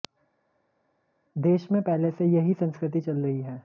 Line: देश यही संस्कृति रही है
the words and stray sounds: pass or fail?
fail